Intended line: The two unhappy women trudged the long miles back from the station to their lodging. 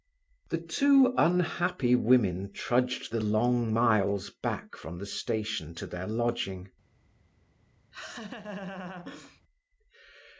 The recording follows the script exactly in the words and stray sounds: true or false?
false